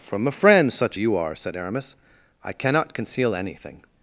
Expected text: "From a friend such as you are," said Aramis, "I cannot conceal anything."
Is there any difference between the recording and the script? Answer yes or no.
yes